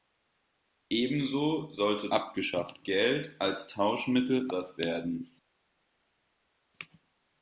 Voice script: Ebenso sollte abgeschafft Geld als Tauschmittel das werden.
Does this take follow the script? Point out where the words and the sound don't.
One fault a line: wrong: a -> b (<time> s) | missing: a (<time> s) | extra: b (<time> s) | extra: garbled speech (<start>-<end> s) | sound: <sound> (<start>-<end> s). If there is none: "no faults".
no faults